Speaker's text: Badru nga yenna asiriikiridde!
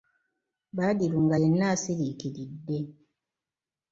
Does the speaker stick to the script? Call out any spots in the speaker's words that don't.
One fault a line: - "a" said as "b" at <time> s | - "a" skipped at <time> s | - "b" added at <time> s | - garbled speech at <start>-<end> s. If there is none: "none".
none